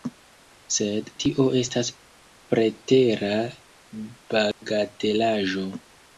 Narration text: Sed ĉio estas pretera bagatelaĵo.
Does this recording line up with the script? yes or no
no